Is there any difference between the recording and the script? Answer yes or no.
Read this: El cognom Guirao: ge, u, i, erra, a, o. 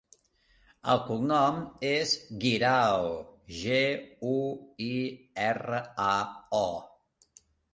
yes